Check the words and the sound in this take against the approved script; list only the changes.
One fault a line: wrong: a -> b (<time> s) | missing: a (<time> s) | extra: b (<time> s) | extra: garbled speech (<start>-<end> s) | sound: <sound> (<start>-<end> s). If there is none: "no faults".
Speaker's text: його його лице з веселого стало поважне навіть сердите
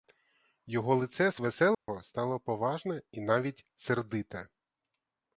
missing: його (0.9 s)
sound: dropout (1.7-1.9 s)
extra: і (3.1 s)